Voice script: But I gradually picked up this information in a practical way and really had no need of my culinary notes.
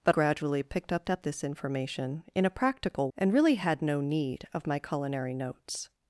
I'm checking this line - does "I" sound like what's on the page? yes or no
no